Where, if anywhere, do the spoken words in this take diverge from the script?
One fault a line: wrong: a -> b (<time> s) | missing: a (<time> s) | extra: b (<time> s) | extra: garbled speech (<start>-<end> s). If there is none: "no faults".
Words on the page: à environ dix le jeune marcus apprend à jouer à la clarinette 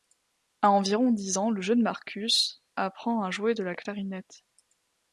extra: ans (1.4 s)
wrong: à -> de (3.5 s)